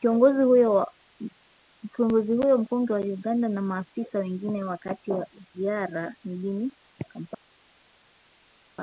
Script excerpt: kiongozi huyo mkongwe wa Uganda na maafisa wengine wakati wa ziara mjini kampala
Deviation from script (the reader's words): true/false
false